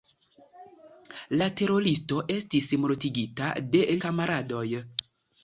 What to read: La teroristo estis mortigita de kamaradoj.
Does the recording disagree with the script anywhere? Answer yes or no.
no